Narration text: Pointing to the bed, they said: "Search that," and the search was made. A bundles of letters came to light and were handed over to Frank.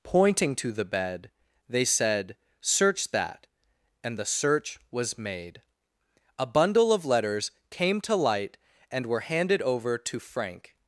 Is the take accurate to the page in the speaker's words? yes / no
no